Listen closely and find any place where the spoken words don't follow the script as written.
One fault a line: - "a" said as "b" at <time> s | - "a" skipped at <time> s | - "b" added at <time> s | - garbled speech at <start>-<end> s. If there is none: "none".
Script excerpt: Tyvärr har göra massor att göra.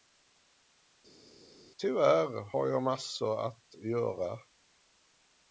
- "göra" said as "jag" at 2.7 s